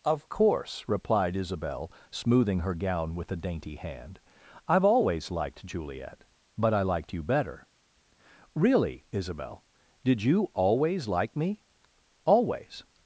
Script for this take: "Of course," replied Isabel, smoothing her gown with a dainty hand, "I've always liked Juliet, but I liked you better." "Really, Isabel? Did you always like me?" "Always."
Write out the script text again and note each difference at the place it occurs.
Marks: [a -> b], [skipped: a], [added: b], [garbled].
"Of course," replied Isabel, smoothing her gown with a dainty hand, "I've always liked Juliet, but I liked you better." "Really, Isabel? Did you always like me?" "Always."